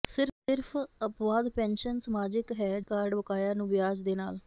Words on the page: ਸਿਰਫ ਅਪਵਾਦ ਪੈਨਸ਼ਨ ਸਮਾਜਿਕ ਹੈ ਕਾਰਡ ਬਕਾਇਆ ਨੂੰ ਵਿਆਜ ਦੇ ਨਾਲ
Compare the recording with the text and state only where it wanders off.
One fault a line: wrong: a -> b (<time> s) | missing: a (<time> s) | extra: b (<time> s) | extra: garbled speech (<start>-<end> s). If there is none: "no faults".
no faults